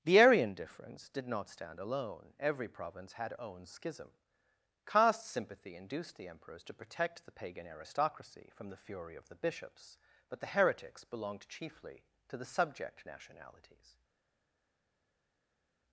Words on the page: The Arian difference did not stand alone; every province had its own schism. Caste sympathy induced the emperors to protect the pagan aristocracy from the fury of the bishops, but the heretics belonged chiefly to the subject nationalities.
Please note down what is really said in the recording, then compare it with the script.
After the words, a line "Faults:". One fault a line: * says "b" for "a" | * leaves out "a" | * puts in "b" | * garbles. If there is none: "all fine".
The Arian difference did not stand alone; every province had own schism. Caste sympathy induced the emperors to protect the pagan aristocracy from the fury of the bishops, but the heretics belonged chiefly to the subject nationalities.
Faults:
* leaves out "its"